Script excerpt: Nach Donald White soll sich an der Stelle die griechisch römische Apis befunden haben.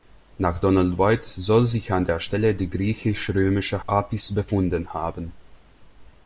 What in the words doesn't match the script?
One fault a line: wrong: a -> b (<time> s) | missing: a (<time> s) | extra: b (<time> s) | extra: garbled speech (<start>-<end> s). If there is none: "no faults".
no faults